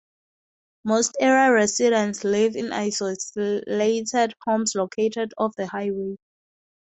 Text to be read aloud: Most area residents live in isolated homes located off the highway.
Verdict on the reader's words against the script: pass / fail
pass